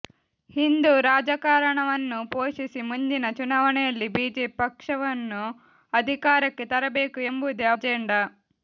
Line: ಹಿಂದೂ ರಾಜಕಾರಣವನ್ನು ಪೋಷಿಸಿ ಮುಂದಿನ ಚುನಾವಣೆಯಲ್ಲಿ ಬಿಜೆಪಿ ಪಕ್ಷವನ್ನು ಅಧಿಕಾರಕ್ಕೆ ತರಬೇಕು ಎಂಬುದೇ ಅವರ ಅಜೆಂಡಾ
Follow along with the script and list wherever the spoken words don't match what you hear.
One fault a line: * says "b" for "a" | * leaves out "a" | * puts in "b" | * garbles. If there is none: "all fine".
* leaves out "ಅವರ"